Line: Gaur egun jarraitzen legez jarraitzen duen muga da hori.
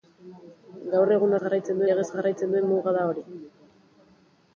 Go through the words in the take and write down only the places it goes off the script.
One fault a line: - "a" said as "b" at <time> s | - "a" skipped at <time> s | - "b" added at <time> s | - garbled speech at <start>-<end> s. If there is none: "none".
none